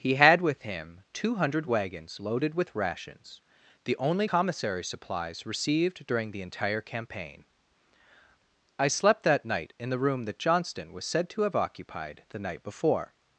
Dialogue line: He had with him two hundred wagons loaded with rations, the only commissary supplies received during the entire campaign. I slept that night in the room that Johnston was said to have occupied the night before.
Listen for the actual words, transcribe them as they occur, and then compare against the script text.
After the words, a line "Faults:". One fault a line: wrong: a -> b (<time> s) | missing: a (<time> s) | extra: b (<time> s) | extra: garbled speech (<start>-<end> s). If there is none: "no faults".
He had with him two hundred wagons loaded with rations, the only commissary supplies received during the entire campaign. I slept that night in the room that Johnston was said to have occupied the night before.
Faults:
no faults